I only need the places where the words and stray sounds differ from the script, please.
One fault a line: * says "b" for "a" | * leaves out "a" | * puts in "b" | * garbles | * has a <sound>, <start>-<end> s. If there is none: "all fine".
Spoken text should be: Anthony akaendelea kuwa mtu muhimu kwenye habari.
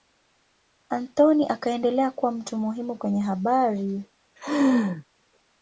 * has a laugh, 4.4-5.0 s